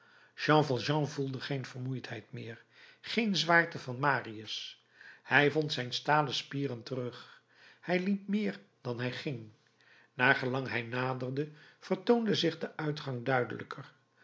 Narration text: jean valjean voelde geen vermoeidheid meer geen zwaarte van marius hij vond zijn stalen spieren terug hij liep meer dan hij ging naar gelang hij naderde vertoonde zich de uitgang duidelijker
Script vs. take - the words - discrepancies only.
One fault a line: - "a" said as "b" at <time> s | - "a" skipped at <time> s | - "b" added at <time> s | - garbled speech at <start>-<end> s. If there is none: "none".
none